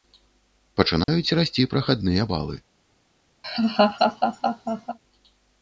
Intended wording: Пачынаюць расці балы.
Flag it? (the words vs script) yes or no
yes